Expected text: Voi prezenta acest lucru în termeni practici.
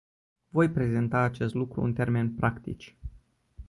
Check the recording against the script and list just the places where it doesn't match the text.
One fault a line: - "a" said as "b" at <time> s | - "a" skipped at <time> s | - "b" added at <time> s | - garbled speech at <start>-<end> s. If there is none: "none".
none